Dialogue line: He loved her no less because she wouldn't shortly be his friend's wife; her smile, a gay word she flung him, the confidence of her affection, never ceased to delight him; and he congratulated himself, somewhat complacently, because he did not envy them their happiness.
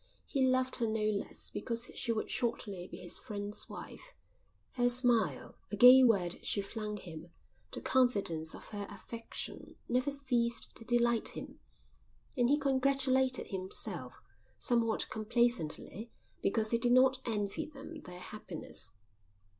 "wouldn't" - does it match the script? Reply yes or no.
no